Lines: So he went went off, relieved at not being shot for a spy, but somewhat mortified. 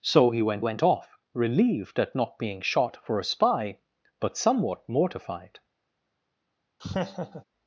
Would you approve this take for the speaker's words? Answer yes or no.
yes